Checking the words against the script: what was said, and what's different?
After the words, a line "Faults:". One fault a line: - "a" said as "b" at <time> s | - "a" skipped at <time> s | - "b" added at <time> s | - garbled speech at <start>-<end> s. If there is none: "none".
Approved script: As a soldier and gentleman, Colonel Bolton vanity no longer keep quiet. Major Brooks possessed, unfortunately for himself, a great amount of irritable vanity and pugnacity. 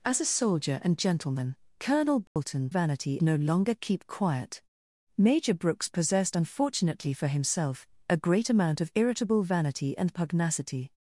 As a soldier and gentleman, Colonel Bolton vanity no longer keep quiet. Major Brooks possessed, unfortunately for himself, a great amount of irritable vanity and pugnacity.
Faults:
none